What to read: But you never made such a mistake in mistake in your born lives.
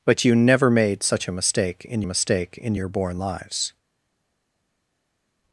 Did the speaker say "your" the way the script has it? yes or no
yes